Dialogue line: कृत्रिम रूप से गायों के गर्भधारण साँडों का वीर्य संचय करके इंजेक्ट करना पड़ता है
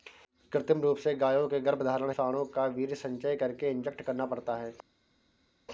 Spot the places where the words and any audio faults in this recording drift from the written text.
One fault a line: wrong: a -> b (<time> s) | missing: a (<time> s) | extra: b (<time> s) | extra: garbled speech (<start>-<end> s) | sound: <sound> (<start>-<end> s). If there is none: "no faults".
no faults